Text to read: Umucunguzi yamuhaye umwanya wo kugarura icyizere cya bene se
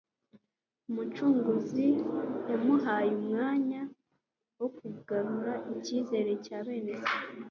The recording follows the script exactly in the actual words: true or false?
true